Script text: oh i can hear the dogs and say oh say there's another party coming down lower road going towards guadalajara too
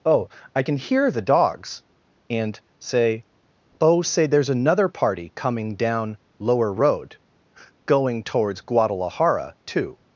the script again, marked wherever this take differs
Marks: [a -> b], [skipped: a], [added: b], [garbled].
oh i can hear the dogs and say oh say there's another party coming down lower road going towards guadalajara too